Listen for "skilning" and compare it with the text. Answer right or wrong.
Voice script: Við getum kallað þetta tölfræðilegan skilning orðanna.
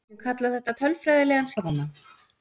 wrong